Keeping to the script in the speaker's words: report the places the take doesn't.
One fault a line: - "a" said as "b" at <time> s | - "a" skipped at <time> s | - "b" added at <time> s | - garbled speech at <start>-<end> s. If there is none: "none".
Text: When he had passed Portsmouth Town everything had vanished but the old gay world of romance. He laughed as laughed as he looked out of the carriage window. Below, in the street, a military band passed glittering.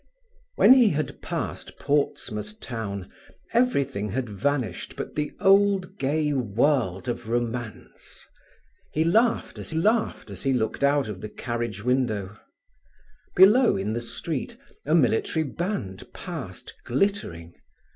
none